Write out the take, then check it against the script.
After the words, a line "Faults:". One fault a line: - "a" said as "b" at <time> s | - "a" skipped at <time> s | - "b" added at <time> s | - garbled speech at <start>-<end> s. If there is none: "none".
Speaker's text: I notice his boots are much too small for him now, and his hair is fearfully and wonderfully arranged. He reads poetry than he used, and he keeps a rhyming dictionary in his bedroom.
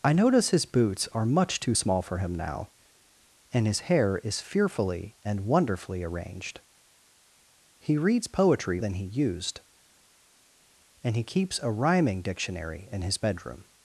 I notice his boots are much too small for him now, and his hair is fearfully and wonderfully arranged. He reads poetry than he used, and he keeps a rhyming dictionary in his bedroom.
Faults:
none